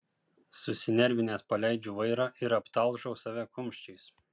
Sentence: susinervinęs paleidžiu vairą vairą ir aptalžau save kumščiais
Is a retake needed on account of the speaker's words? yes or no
yes